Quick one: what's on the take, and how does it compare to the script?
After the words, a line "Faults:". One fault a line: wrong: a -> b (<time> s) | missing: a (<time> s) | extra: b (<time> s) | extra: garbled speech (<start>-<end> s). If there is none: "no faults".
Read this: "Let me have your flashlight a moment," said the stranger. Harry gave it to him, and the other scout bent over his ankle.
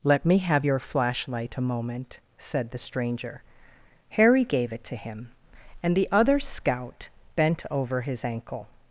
"Let me have your flashlight a moment," said the stranger. Harry gave it to him, and the other scout bent over his ankle.
Faults:
no faults